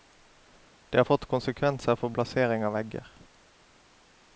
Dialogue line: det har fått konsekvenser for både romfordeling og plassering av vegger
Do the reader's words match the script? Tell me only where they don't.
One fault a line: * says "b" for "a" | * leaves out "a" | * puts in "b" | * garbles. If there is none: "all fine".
* leaves out "både romfordeling og"